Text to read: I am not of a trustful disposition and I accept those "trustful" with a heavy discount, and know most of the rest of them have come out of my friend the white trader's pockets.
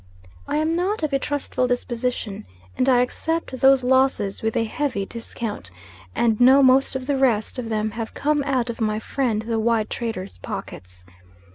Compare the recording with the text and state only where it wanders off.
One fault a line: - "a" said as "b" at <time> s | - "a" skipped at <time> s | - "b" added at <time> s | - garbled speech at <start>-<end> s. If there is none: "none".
- "trustful" said as "losses" at 3.8 s